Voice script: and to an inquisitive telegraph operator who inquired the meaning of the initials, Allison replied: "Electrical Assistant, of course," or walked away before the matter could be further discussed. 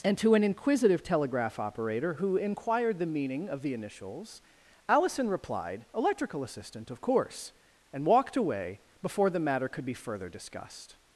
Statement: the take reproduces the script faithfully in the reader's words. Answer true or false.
false